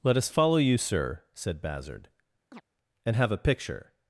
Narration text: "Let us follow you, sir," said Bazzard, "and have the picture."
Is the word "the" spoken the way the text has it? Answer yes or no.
no